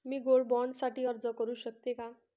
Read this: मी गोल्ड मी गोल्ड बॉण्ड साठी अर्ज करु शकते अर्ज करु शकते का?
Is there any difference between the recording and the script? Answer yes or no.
yes